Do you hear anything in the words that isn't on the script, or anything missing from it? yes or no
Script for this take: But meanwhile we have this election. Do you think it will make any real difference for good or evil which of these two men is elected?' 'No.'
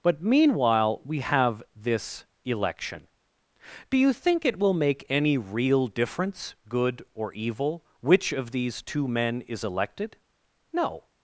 yes